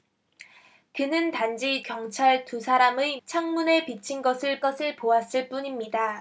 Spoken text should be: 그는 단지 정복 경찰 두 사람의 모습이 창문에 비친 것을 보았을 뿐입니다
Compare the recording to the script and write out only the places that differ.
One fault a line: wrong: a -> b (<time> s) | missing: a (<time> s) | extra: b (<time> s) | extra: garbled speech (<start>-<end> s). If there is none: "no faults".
missing: 정복 (1.8 s)
missing: 모습이 (3.2 s)
extra: 것을 (4.6 s)